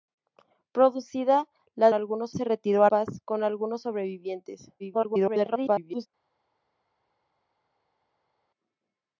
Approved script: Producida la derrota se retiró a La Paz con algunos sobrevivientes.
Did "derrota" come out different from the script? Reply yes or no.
yes